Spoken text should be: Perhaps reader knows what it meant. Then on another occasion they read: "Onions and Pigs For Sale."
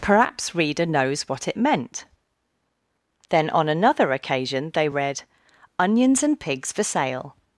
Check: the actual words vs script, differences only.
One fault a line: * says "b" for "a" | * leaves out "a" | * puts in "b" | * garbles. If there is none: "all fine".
all fine